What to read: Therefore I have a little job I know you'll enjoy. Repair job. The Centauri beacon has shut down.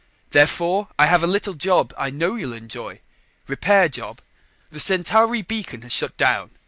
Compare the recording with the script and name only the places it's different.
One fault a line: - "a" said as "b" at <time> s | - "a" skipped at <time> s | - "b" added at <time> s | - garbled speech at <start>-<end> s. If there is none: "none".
none